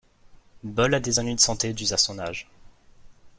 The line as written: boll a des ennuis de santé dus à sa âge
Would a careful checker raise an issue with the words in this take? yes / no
yes